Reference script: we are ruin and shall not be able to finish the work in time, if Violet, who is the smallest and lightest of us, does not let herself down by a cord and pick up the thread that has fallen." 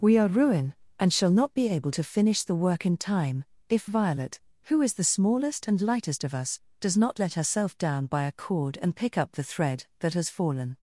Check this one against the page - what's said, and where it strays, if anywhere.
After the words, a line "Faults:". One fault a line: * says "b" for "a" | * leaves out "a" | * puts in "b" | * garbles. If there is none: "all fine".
we are ruin and shall not be able to finish the work in time, if Violet, who is the smallest and lightest of us, does not let herself down by a cord and pick up the thread that has fallen."
Faults:
all fine